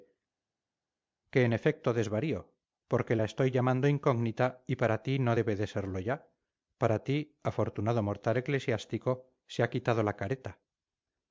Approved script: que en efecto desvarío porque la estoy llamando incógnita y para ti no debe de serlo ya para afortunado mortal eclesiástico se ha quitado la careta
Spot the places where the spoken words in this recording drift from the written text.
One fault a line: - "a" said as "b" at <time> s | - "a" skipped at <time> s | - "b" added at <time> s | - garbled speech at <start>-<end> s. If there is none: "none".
- "ti" added at 7.0 s